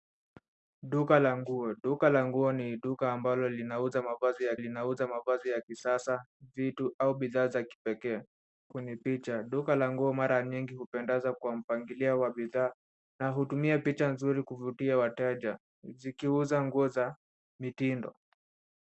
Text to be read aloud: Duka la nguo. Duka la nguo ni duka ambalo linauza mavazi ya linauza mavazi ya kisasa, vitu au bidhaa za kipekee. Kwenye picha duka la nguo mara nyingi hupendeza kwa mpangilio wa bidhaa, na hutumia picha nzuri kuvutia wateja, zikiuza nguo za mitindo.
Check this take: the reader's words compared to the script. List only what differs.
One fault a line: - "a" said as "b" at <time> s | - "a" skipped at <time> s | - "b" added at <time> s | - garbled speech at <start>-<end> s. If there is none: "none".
none